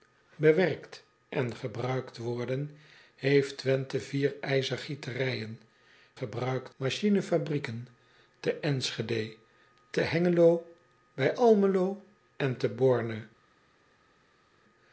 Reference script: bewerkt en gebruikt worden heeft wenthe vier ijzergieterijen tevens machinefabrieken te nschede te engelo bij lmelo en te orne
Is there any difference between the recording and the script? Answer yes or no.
yes